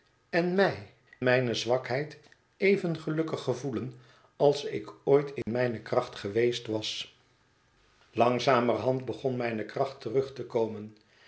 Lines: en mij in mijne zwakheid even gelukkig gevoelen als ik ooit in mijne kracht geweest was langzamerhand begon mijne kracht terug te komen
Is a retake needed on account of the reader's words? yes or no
yes